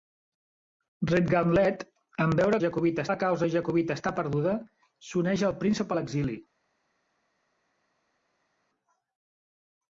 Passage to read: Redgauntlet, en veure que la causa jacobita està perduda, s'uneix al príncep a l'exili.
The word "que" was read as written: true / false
false